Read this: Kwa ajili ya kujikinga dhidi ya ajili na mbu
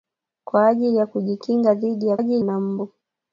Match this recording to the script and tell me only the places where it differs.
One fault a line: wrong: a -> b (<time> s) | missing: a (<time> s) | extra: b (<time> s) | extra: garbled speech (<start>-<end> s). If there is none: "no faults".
no faults